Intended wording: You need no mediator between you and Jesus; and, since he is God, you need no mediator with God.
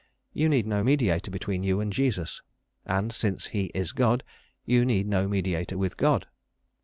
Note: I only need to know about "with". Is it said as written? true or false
true